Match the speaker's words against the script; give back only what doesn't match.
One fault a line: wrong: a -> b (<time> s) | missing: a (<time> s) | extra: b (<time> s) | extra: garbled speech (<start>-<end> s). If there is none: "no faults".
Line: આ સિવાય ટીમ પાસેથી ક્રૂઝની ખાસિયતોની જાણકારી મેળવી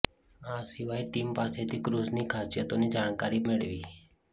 no faults